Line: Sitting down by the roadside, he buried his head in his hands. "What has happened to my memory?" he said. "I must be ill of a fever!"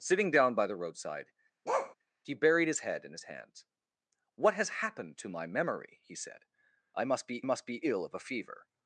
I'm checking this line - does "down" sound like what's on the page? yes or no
yes